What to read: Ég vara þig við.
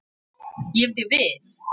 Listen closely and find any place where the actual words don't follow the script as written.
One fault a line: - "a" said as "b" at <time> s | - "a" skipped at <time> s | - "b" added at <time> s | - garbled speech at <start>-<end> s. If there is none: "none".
- "vara" skipped at 1.0 s